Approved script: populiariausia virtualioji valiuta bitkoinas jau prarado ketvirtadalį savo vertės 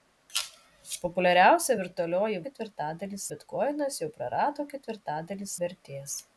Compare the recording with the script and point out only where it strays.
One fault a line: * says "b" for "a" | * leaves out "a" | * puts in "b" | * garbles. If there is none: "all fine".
* says "ketvirtadalį" for "valiuta"
* leaves out "savo"